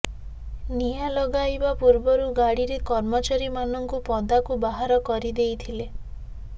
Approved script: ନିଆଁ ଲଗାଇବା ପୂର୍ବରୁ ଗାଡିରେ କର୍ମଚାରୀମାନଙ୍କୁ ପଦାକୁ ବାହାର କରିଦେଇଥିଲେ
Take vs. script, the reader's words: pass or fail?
pass